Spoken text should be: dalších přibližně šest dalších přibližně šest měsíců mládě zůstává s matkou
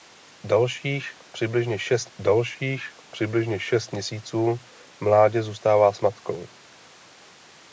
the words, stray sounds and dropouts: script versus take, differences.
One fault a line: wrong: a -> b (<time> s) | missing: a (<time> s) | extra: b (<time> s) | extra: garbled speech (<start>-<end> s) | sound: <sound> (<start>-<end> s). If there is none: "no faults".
no faults